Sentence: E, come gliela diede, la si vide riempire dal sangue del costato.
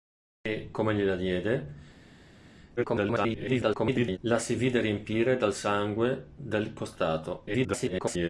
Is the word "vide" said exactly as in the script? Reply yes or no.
yes